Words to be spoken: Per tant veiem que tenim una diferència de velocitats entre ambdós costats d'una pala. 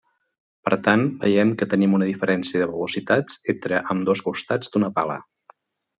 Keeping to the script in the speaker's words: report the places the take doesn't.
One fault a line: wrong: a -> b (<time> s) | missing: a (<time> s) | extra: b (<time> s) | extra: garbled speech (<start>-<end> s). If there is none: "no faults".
no faults